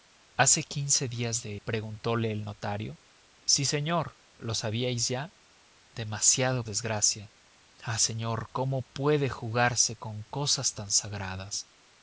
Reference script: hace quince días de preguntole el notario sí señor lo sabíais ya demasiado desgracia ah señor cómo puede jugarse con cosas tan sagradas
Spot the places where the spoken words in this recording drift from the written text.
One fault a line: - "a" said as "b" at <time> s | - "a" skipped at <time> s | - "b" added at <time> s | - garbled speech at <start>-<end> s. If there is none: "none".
none